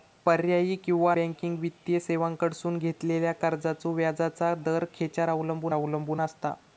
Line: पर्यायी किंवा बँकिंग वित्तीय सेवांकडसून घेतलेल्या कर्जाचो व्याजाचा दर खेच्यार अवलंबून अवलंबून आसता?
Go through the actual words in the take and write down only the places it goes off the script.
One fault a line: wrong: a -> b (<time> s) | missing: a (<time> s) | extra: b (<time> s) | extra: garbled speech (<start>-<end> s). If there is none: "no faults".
no faults